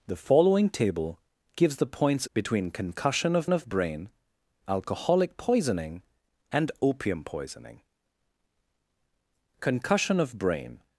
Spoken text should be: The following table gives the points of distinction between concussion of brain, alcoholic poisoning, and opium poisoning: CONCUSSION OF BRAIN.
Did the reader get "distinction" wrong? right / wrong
wrong